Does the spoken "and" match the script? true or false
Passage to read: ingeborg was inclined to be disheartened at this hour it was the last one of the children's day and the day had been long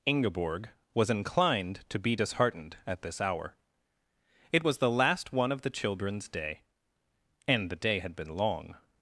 true